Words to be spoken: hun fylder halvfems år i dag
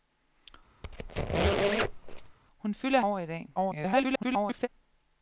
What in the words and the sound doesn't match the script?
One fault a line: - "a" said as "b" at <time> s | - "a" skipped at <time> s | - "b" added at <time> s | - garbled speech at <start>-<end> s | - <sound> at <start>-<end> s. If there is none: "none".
- squeak at 0.8-2.4 s
- "halvfems" skipped at 3.0 s
- garbled speech at 3.6-4.7 s